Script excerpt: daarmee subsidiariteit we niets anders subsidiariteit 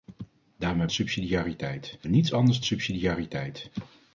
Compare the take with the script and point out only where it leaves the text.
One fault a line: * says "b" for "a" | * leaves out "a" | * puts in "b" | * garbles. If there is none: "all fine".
all fine